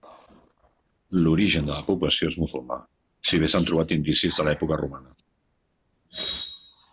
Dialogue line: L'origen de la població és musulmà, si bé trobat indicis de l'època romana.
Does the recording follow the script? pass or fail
fail